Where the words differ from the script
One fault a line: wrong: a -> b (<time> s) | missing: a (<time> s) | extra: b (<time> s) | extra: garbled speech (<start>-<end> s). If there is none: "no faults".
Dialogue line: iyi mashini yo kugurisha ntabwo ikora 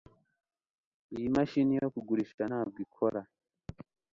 no faults